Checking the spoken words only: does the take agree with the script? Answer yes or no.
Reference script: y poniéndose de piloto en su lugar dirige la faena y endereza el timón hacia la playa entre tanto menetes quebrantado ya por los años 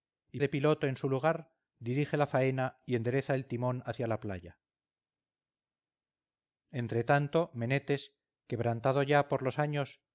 no